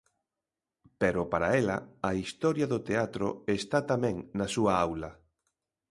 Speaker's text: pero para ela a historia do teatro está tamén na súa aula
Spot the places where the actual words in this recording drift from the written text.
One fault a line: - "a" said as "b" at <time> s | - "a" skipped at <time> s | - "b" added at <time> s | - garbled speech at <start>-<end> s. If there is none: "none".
none